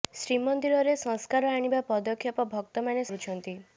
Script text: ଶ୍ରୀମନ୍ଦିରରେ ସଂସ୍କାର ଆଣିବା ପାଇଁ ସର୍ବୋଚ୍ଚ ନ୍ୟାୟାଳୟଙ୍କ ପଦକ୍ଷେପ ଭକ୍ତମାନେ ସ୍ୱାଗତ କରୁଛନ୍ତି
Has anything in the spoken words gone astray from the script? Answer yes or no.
yes